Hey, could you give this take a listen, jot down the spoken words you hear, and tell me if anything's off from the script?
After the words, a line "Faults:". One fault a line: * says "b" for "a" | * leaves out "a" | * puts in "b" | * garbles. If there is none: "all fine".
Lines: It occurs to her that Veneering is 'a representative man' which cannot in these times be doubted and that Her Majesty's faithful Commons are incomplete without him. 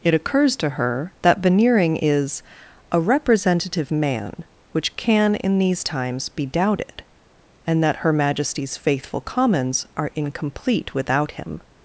It occurs to her that Veneering is 'a representative man' which can in these times be doubted and that Her Majesty's faithful Commons are incomplete without him.
Faults:
* says "can" for "cannot"